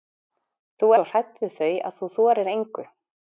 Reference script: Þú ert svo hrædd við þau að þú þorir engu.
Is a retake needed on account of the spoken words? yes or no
yes